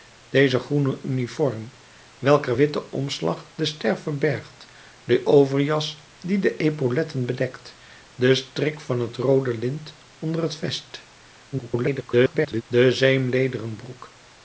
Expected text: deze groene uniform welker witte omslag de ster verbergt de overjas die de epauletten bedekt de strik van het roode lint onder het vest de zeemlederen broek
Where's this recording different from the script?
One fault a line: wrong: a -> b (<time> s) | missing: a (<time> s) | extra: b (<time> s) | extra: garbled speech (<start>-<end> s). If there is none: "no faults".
extra: garbled speech (11.5-12.6 s)